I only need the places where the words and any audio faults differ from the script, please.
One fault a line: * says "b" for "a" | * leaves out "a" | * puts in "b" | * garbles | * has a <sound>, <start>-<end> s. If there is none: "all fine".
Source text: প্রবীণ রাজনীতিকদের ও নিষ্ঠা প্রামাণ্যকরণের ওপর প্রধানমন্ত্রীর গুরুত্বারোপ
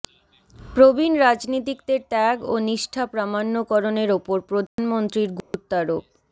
* puts in "ত্যাগ"
* has a dropout, 4.7-4.8 s
* has a dropout, 5.4-5.5 s